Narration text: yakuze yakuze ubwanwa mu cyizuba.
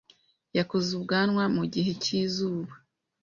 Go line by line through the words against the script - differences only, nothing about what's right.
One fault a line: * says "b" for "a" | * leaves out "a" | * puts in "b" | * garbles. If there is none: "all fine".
* leaves out "yakuze"
* puts in "gihe"